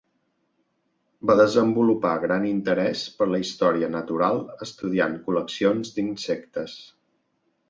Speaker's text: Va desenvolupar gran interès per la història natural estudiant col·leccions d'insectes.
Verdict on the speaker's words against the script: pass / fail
pass